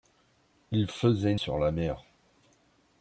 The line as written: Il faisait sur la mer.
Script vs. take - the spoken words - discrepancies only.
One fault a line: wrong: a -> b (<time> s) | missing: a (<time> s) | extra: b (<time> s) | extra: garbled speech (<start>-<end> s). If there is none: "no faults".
no faults